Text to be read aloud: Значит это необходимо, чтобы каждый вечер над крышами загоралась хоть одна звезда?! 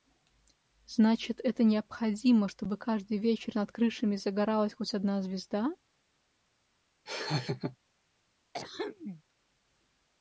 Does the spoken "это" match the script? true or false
true